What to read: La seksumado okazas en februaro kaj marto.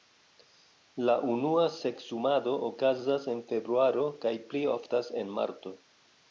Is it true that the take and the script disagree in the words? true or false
true